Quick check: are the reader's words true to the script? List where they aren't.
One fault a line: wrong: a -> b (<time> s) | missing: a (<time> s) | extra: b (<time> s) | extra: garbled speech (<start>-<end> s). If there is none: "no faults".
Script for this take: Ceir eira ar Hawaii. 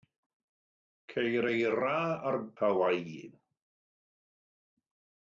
no faults